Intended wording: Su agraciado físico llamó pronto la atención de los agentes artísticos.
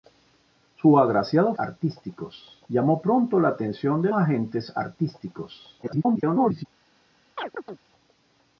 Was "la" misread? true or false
false